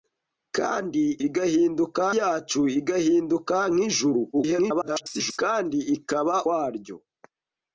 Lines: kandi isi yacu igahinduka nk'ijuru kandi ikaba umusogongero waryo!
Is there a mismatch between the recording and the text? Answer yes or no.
yes